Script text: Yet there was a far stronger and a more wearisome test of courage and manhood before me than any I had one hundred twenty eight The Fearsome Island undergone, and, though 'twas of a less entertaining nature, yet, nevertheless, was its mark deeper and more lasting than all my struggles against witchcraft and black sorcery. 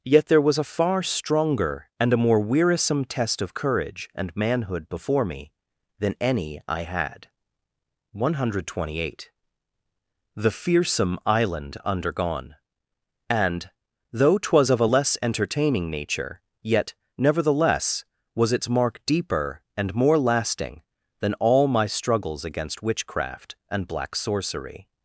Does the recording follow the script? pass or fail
pass